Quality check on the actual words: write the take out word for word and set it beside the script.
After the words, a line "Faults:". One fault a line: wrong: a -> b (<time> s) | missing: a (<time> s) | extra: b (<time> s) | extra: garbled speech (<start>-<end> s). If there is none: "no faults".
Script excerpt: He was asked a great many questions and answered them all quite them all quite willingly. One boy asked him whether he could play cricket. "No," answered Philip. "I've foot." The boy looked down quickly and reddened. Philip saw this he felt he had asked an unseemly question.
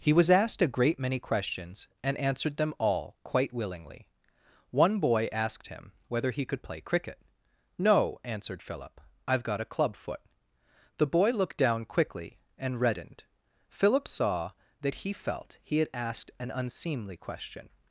He was asked a great many questions and answered them all quite willingly. One boy asked him whether he could play cricket. "No," answered Philip. "I've got a club foot." The boy looked down quickly and reddened. Philip saw that he felt he had asked an unseemly question.
Faults:
missing: them all quite (3.5 s)
extra: got a club (9.4 s)
wrong: this -> that (14.8 s)